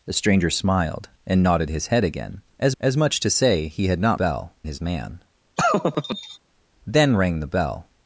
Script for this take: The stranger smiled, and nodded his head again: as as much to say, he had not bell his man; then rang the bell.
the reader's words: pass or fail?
pass